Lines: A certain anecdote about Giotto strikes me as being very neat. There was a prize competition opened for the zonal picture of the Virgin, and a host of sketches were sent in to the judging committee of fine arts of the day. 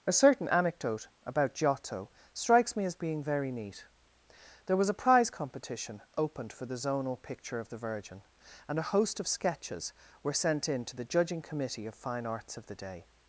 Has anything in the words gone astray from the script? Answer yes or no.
no